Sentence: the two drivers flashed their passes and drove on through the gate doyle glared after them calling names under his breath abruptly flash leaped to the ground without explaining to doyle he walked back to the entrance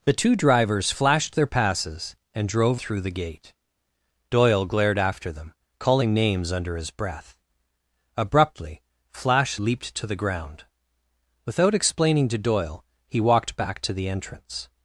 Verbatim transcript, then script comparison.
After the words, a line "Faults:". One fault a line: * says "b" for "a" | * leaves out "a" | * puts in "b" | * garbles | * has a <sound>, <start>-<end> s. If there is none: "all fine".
the two drivers flashed their passes and drove through the gate doyle glared after them calling names under his breath abruptly flash leaped to the ground without explaining to doyle he walked back to the entrance
Faults:
* leaves out "on"